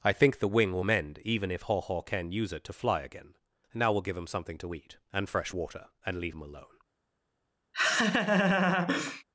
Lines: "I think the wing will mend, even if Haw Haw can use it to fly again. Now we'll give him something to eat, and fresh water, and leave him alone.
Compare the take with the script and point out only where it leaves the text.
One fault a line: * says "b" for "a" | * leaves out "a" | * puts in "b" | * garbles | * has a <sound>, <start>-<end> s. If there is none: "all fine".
* has a laugh, 7.7-9.2 s